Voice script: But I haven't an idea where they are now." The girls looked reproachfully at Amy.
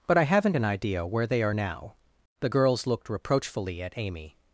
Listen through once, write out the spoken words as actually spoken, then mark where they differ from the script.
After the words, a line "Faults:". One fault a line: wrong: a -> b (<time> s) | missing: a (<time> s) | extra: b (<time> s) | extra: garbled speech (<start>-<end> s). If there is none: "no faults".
But I haven't an idea where they are now." The girls looked reproachfully at Amy.
Faults:
no faults